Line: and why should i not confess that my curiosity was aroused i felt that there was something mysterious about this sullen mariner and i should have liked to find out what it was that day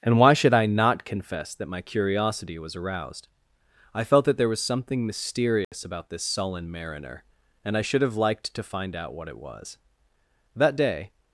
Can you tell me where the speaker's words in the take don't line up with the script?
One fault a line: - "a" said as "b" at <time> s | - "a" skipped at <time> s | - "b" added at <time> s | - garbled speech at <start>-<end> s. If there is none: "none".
none